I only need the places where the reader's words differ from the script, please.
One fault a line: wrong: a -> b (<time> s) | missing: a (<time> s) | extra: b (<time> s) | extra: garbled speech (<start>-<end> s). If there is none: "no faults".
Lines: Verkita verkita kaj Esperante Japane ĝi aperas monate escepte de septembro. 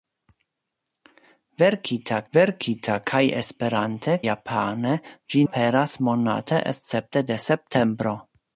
no faults